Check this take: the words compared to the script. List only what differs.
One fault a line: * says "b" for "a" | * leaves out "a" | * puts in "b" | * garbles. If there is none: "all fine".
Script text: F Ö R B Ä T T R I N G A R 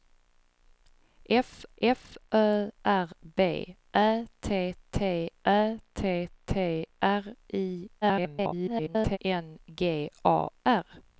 * puts in "f"
* puts in "Ä T T"
* garbles